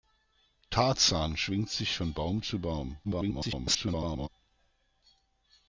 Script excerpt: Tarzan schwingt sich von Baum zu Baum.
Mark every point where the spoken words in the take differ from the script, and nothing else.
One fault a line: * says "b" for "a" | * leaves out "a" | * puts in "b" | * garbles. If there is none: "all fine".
* garbles